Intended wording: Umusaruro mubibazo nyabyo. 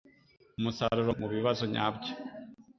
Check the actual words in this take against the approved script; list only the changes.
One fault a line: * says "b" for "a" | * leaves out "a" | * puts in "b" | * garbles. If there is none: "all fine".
all fine